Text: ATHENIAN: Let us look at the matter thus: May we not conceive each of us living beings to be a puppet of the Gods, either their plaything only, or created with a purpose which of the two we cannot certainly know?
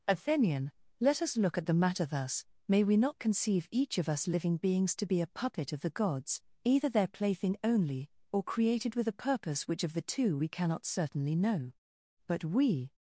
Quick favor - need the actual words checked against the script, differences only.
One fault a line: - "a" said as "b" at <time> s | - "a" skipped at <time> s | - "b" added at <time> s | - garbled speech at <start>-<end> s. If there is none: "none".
- "But we" added at 12.3 s